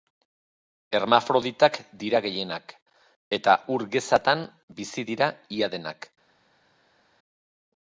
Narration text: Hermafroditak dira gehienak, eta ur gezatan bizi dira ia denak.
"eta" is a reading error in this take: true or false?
false